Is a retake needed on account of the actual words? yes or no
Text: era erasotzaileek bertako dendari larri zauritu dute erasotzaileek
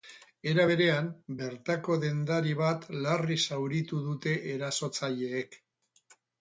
yes